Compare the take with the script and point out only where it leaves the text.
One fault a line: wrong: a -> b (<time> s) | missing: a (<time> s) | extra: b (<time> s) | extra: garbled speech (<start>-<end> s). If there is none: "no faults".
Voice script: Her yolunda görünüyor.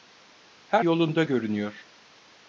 no faults